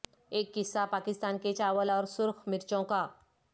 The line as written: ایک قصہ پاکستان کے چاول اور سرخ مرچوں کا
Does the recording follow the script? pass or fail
pass